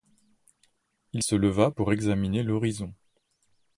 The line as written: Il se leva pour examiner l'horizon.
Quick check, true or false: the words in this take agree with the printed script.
true